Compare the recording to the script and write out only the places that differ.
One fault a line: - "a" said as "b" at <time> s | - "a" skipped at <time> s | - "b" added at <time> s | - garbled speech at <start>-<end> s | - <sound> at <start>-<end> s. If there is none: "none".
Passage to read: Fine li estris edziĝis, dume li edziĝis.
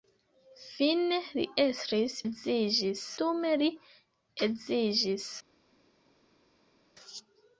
none